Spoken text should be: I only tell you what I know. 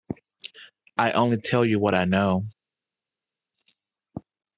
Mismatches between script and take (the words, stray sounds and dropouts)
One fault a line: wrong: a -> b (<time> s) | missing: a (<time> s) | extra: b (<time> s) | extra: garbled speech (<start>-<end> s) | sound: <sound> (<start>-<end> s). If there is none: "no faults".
no faults